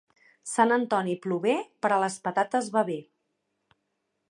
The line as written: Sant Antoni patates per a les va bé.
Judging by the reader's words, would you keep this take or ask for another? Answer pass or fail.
fail